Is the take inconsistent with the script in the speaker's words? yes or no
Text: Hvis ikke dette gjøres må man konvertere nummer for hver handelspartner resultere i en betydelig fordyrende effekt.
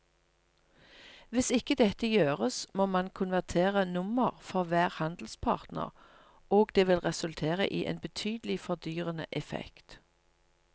yes